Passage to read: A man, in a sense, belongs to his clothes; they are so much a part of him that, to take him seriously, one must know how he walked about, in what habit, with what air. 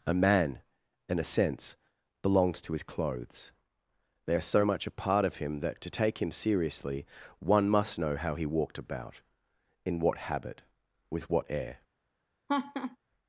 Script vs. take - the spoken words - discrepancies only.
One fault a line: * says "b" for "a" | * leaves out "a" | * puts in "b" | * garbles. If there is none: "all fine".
all fine